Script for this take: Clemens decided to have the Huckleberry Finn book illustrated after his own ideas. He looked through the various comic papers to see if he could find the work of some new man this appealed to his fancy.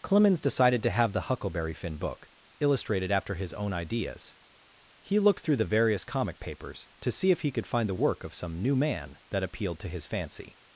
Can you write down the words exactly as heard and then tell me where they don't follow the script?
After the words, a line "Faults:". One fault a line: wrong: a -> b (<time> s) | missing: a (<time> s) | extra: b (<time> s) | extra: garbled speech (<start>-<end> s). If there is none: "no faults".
Clemens decided to have the Huckleberry Finn book illustrated after his own ideas. He looked through the various comic papers to see if he could find the work of some new man that appealed to his fancy.
Faults:
wrong: this -> that (9.3 s)